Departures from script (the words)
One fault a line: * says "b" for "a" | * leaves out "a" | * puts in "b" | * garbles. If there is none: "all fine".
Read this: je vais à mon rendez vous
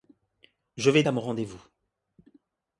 all fine